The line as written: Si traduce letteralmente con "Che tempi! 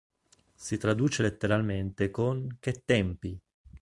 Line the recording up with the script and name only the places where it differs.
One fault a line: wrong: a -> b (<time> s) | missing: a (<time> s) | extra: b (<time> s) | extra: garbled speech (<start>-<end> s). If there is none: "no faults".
no faults